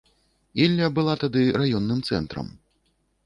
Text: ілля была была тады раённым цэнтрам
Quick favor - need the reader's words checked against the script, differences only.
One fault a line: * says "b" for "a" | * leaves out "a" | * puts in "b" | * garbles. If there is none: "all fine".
* leaves out "была"